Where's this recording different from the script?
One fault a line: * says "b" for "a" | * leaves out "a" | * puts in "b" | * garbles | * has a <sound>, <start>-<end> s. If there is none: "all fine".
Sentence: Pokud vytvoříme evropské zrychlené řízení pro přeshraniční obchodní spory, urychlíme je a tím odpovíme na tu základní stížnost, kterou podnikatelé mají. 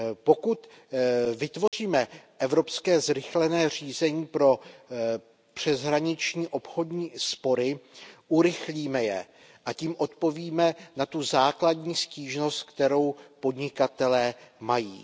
* has a dropout, 1.7-1.7 s